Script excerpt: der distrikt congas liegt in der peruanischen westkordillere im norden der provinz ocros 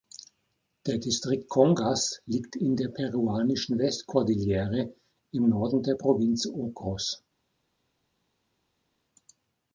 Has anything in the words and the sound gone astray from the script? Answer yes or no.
no